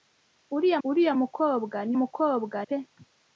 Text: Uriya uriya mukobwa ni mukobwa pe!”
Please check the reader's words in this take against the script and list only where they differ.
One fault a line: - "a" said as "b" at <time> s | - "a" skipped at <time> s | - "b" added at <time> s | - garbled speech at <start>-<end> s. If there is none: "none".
none